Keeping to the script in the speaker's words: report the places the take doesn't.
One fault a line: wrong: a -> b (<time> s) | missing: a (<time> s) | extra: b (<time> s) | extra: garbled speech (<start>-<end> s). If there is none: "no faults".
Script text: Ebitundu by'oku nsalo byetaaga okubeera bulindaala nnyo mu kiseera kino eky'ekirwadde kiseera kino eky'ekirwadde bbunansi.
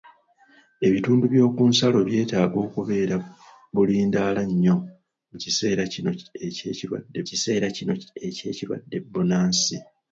no faults